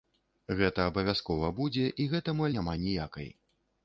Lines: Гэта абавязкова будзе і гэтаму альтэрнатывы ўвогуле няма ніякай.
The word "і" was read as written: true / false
true